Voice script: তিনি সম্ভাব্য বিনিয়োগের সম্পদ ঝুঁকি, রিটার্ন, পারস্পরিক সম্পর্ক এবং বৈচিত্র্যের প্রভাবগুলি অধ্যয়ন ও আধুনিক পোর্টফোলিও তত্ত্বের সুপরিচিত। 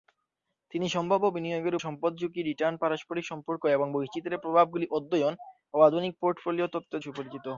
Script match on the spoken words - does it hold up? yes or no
yes